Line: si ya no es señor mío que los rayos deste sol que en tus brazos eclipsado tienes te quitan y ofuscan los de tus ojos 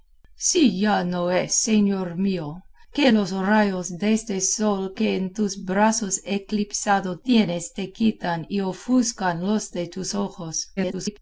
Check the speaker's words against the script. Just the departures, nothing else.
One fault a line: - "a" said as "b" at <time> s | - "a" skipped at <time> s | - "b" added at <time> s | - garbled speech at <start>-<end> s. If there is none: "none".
- garbled speech at 10.8-11.2 s